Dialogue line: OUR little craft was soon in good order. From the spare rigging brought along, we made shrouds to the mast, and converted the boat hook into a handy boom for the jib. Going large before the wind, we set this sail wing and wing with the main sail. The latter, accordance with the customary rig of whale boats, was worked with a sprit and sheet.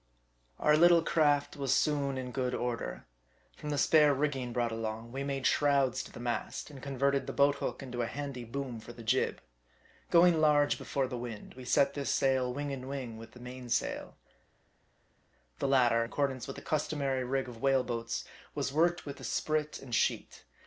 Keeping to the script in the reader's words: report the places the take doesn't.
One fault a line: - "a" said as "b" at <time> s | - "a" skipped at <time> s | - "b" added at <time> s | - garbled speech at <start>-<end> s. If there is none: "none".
none